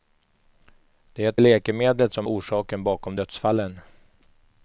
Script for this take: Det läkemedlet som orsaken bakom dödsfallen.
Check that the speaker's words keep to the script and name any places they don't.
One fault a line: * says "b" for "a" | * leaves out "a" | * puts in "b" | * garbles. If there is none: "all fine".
all fine